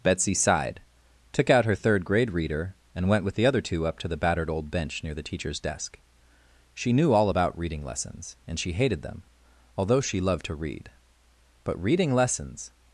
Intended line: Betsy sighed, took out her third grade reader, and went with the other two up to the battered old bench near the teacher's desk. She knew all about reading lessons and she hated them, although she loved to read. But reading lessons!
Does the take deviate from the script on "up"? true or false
false